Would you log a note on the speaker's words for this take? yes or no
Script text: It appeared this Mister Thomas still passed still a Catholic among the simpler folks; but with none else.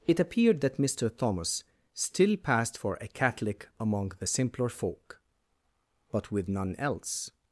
yes